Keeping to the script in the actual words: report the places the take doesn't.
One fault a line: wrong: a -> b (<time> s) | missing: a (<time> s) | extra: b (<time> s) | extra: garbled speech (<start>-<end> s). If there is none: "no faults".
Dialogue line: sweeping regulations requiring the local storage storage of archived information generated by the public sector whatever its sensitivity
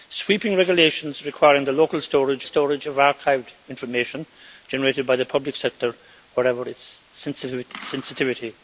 no faults